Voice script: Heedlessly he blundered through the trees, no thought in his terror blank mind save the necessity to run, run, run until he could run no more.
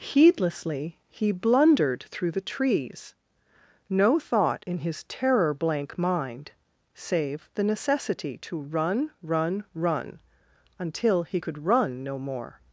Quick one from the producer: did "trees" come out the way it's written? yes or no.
yes